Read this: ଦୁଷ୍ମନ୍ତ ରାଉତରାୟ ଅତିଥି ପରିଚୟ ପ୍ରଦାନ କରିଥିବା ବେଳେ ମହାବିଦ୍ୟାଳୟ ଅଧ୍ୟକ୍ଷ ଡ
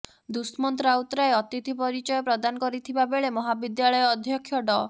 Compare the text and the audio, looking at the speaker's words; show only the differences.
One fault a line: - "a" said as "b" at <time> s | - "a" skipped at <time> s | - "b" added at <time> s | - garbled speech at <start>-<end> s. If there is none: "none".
none